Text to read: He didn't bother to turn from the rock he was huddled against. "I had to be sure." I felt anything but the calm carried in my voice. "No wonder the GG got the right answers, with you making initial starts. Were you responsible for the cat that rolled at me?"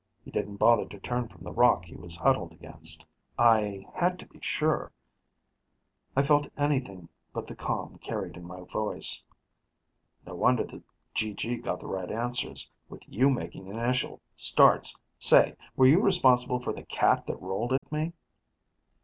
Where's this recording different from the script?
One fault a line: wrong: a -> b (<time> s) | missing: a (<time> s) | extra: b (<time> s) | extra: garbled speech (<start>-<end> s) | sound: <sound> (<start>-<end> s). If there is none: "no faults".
extra: Say (15.2 s)
sound: dropout (17.8-17.8 s)